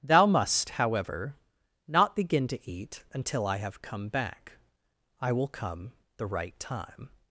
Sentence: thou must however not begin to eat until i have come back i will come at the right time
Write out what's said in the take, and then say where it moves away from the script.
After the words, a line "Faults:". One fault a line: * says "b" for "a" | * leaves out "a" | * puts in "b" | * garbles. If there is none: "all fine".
thou must however not begin to eat until i have come back i will come the right time
Faults:
* leaves out "at"